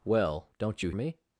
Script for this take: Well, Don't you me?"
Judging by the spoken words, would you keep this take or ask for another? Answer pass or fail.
pass